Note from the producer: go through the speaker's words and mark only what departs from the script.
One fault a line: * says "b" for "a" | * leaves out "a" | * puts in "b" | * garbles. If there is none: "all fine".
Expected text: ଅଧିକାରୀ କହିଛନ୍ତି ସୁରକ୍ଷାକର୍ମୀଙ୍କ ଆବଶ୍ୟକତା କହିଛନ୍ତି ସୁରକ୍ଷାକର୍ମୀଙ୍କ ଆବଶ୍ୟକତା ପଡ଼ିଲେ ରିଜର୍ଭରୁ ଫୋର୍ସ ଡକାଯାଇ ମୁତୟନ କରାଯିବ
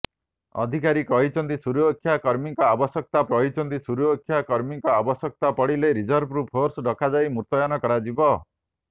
all fine